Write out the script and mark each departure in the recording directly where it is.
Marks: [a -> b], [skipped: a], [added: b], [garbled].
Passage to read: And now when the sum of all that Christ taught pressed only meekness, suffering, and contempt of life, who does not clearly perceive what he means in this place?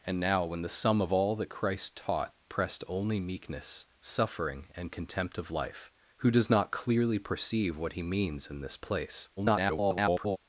And now when the sum of all that Christ taught pressed only meekness, suffering, and contempt of life, who does not clearly perceive what he means in this place? [garbled]